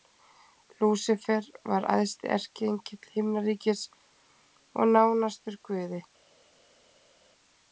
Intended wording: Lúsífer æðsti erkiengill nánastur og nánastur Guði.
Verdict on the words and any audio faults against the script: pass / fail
fail